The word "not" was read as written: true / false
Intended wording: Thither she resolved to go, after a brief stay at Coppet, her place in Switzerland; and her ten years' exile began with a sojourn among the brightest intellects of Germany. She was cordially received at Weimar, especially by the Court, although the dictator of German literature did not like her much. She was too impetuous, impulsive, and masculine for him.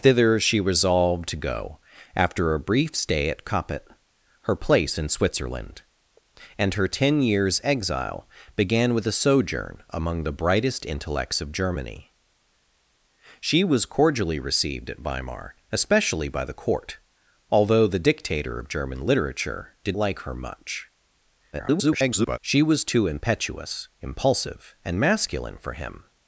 false